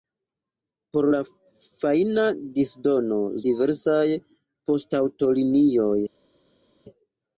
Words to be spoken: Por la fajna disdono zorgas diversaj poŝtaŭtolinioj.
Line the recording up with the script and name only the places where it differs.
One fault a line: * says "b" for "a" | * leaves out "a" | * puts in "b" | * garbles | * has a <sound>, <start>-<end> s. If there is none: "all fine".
* leaves out "zorgas"